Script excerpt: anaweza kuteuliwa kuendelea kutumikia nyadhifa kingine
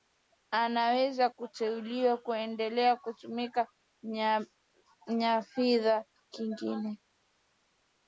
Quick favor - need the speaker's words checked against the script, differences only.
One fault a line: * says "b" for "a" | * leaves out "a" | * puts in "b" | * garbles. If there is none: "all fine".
all fine